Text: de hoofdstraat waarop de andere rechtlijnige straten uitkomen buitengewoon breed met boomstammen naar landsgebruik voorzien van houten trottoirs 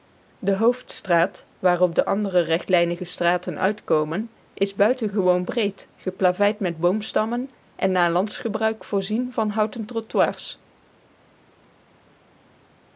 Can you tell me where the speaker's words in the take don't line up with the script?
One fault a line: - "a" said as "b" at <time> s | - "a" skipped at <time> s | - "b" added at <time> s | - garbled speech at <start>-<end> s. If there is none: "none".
- "is" added at 4.5 s
- "geplaveid" added at 6.0 s
- "en" added at 7.8 s